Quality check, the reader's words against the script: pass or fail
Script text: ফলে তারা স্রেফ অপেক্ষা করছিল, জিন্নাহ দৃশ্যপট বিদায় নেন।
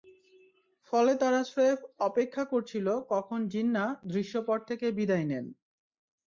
fail